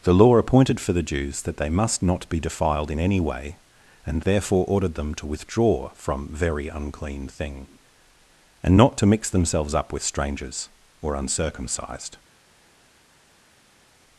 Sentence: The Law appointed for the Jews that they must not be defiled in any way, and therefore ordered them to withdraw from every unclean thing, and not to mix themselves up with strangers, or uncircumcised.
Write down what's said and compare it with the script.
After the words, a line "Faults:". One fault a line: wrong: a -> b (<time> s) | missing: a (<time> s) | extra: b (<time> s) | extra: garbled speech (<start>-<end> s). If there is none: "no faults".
The Law appointed for the Jews that they must not be defiled in any way, and therefore ordered them to withdraw from very unclean thing, and not to mix themselves up with strangers, or uncircumcised.
Faults:
wrong: every -> very (6.3 s)